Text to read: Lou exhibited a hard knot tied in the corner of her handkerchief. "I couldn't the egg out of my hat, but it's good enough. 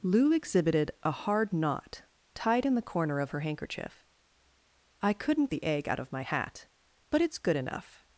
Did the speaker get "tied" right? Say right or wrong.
right